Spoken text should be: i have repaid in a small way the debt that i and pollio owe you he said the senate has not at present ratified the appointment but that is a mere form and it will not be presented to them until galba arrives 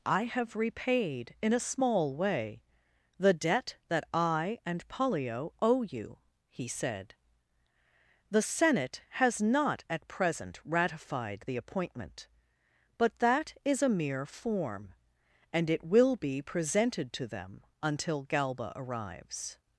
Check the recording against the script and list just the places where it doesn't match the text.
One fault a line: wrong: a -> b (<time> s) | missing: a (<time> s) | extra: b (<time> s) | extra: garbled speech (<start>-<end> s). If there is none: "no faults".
missing: not (16.2 s)